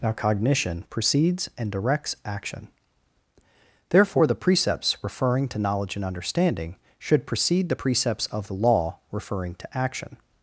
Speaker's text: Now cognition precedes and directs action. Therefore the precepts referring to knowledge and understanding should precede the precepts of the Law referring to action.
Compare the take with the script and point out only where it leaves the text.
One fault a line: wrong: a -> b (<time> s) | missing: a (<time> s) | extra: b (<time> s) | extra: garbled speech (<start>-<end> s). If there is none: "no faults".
no faults